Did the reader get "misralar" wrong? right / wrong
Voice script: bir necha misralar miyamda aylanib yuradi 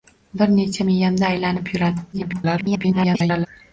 wrong